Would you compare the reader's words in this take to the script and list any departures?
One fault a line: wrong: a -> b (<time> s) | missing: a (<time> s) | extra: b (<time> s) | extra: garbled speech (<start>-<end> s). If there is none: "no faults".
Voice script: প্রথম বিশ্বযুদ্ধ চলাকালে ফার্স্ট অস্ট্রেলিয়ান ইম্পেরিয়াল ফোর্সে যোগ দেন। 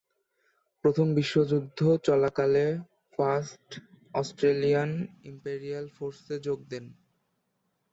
no faults